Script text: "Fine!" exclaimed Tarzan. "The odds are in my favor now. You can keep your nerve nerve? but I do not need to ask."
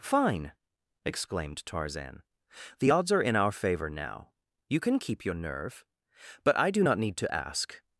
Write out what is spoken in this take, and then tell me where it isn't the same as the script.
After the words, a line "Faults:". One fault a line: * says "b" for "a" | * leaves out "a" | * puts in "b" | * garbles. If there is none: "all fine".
"Fine!" exclaimed Tarzan. "The odds are in our favor now. You can keep your nerve? but I do not need to ask."
Faults:
* says "our" for "my"
* leaves out "nerve"